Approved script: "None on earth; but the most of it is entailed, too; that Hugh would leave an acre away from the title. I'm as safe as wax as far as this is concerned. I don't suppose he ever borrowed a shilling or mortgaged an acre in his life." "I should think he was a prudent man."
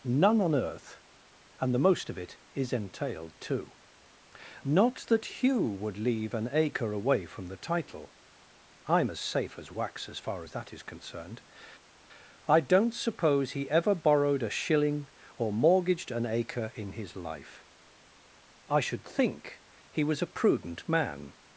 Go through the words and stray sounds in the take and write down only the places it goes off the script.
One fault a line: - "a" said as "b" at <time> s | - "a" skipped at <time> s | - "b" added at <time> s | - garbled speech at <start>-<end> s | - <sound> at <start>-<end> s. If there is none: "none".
- "but" said as "and" at 1.6 s
- "not" added at 4.6 s
- "this" said as "that" at 10.5 s